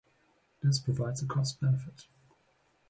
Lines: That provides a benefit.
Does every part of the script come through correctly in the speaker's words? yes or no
no